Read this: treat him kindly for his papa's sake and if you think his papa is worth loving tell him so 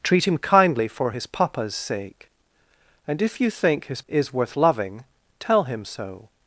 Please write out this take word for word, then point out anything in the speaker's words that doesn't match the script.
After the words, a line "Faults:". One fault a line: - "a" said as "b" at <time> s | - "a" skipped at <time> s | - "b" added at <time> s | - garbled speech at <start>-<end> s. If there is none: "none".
treat him kindly for his papa's sake and if you think his is worth loving tell him so
Faults:
- "papa" skipped at 4.0 s